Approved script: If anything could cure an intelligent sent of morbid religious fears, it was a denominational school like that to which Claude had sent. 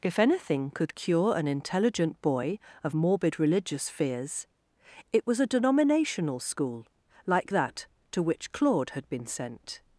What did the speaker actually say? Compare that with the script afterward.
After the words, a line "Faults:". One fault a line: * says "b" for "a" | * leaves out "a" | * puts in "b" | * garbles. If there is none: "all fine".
If anything could cure an intelligent boy of morbid religious fears, it was a denominational school like that to which Claude had been sent.
Faults:
* says "boy" for "sent"
* puts in "been"